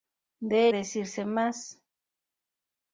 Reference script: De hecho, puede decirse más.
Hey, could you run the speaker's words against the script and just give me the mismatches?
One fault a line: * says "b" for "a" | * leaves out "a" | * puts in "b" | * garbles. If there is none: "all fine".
* leaves out "hecho puede"